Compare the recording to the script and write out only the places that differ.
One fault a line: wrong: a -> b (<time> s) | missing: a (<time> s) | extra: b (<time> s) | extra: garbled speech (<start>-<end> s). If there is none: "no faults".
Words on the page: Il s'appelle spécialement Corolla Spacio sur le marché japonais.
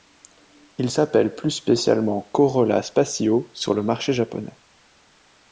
extra: plus (1.3 s)